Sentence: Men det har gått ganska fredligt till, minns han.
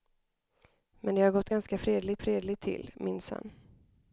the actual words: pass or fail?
fail